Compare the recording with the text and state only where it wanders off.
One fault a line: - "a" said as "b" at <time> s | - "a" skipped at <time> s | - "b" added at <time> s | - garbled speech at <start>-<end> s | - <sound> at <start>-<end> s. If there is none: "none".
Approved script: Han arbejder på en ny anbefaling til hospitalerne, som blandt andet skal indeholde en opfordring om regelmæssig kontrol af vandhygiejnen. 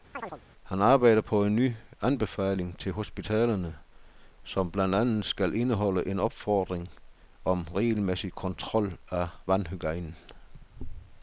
- chirp at 0.1-0.4 s